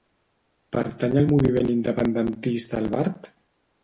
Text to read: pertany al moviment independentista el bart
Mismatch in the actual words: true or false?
false